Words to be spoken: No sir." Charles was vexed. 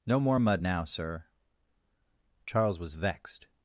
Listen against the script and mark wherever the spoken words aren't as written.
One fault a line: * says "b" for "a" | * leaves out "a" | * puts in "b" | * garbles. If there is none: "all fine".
* puts in "more mud now"